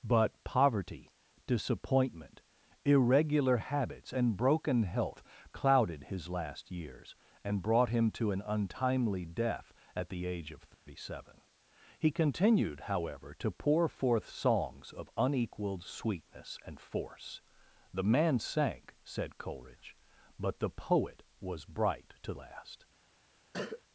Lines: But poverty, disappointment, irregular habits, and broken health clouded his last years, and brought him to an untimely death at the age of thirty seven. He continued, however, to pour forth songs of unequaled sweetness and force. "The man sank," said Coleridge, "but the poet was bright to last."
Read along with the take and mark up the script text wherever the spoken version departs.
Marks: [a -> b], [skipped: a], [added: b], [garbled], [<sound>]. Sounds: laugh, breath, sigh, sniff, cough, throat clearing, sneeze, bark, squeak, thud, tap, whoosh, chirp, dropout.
But poverty, disappointment, irregular habits, and broken health clouded his last years, and brought him to an untimely death at the age of thirty [dropout] seven. He continued, however, to pour forth songs of unequaled sweetness and force. "The man sank," said Coleridge, "but the poet was bright to last." [cough]